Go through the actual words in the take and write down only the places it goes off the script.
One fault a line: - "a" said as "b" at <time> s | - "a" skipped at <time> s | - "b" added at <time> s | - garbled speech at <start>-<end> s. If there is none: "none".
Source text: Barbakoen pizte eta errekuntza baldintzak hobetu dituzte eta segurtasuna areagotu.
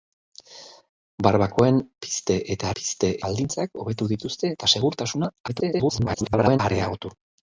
- "errekuntza" said as "pizte" at 2.8 s
- garbled speech at 5.5-6.6 s